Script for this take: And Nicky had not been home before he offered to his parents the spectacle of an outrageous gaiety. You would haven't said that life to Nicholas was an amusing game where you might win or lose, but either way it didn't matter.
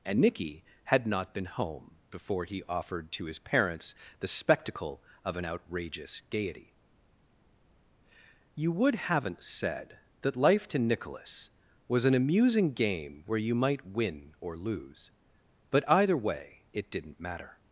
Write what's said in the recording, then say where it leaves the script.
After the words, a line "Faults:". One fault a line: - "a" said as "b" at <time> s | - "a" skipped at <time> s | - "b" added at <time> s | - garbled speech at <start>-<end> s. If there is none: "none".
And Nicky had not been home before he offered to his parents the spectacle of an outrageous gaiety. You would haven't said that life to Nicholas was an amusing game where you might win or lose, but either way it didn't matter.
Faults:
none